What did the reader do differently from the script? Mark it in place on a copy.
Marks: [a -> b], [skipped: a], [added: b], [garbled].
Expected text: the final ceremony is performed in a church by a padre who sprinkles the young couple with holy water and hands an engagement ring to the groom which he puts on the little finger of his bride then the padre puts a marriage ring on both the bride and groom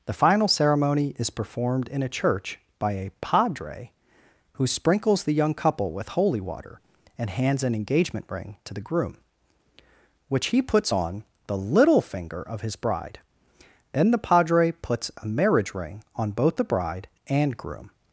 the final ceremony is performed in a church by a padre who sprinkles the young couple with holy water and hands an engagement ring to the groom which he puts on the little finger of his bride then the padre puts a marriage ring on both the bride and groom